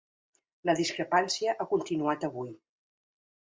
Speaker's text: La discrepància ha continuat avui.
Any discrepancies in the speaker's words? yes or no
no